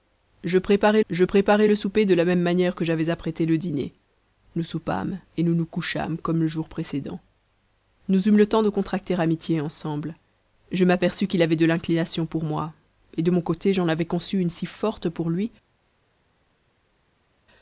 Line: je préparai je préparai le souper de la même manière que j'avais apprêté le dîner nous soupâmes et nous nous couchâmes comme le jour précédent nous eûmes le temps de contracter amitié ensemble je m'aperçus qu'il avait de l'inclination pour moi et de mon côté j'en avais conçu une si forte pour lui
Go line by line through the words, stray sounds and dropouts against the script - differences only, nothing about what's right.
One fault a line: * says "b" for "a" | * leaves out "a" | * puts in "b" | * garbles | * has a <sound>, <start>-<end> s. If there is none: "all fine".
all fine